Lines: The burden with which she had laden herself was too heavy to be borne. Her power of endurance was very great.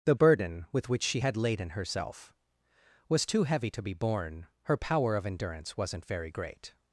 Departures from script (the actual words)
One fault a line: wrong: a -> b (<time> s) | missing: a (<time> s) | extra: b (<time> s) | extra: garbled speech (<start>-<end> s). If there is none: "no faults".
wrong: was -> wasn't (5.8 s)